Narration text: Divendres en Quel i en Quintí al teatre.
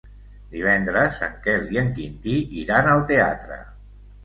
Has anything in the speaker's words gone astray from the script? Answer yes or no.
yes